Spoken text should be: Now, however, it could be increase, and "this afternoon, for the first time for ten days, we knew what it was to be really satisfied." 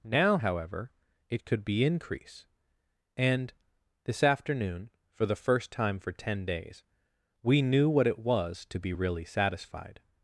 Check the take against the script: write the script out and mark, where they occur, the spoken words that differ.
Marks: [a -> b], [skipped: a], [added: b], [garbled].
Now, however, it could be increase, and "this afternoon, for the first time for ten days, we knew what it was to be really satisfied."